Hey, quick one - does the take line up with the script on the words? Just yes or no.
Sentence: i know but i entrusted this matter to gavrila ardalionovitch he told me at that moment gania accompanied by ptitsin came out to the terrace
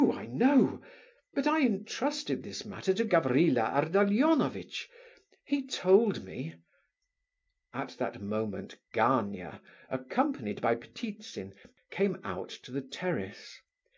yes